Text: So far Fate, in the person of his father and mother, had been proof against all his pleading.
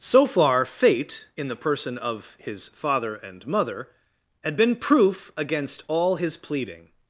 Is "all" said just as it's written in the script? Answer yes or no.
yes